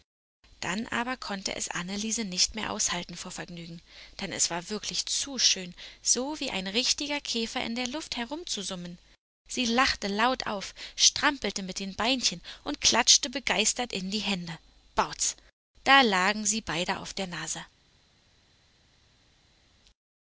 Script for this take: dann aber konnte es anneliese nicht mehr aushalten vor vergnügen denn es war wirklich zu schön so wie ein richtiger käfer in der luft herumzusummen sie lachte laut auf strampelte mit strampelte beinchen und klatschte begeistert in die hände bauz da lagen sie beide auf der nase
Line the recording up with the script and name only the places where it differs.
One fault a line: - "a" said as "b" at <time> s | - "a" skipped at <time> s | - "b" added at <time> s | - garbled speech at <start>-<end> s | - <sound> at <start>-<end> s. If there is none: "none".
- "strampelte" said as "den" at 11.8 s